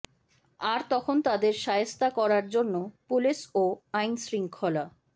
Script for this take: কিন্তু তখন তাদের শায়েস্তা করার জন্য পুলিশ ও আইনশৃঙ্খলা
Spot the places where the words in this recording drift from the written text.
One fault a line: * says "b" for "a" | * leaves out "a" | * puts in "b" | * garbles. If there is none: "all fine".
* says "আর" for "কিন্তু"